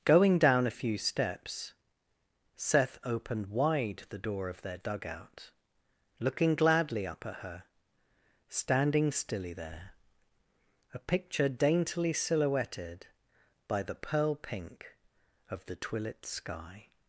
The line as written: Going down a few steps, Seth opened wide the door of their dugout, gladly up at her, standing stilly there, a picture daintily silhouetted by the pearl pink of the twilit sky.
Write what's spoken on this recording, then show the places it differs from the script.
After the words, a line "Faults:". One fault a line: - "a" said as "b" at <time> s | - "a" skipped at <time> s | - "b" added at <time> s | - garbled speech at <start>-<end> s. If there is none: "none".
Going down a few steps, Seth opened wide the door of their dugout, looking gladly up at her, standing stilly there, a picture daintily silhouetted by the pearl pink of the twilit sky.
Faults:
- "looking" added at 6.2 s